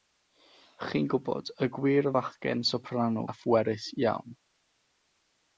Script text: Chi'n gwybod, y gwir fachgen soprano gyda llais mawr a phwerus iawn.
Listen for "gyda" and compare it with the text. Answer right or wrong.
wrong